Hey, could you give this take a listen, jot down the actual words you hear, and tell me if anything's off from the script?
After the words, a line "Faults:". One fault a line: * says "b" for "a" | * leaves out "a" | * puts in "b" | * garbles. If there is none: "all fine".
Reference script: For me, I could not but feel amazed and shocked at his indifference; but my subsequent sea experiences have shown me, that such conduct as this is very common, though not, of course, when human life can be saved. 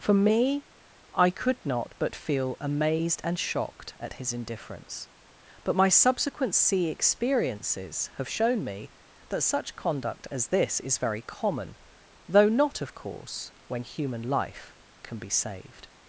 For me, I could not but feel amazed and shocked at his indifference; but my subsequent sea experiences have shown me, that such conduct as this is very common, though not, of course, when human life can be saved.
Faults:
all fine